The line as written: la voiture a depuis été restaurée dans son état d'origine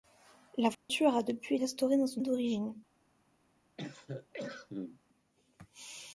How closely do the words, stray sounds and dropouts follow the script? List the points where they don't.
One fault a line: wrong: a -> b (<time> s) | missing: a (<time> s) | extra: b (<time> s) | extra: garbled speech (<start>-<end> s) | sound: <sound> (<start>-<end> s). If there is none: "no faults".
sound: dropout (0.7-0.9 s)
missing: été (1.6 s)
missing: état (2.2 s)
sound: cough (3.8-5.0 s)